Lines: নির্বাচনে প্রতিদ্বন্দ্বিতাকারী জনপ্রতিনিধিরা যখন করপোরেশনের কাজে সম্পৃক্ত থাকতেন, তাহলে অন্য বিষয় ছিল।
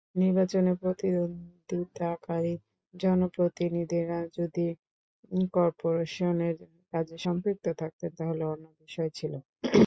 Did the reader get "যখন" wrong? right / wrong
wrong